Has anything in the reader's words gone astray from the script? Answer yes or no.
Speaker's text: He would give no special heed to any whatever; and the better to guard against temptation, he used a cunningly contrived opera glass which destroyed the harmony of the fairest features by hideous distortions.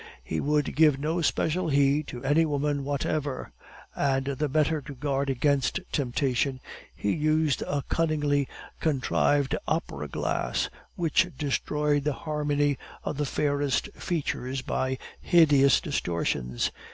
yes